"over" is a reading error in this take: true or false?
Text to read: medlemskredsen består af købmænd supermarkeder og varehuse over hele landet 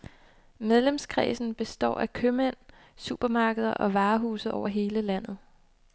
false